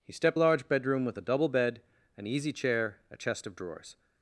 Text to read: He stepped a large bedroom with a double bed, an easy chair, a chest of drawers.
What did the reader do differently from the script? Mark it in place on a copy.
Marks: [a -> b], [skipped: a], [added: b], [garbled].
He stepped a large bedroom with a double bed, an easy chair, a chest of drawers.